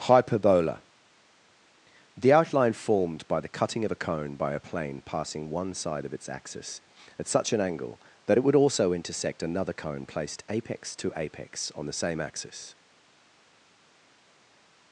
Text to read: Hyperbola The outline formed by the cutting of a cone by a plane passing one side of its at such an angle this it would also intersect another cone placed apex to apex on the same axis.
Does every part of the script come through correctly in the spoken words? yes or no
no